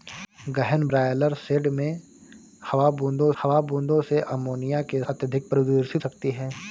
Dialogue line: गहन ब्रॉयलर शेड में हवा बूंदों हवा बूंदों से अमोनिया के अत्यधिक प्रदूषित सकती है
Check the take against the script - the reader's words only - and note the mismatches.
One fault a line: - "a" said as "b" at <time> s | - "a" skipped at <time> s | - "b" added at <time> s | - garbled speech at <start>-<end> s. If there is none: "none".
none